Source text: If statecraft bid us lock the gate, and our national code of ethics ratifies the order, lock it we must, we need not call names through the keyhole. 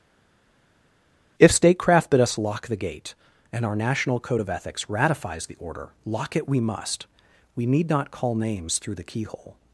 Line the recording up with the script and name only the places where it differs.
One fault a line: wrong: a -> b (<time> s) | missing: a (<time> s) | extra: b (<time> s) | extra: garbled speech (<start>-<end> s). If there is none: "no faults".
no faults